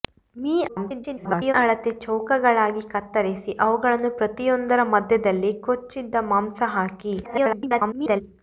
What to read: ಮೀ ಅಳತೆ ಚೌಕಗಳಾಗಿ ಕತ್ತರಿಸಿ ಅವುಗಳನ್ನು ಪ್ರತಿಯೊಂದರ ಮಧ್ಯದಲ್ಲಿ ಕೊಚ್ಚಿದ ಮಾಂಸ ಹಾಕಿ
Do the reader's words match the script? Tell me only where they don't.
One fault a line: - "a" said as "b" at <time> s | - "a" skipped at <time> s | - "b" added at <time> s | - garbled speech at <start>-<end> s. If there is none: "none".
- garbled speech at 0.7-1.5 s
- garbled speech at 7.2-8.2 s